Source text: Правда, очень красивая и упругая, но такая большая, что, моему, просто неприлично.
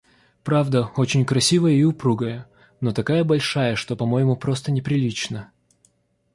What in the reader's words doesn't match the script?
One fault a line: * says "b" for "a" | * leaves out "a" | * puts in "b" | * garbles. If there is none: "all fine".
* puts in "по"